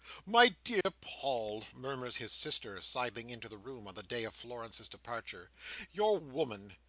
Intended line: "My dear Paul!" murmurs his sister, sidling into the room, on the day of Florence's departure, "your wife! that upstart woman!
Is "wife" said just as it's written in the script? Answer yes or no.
no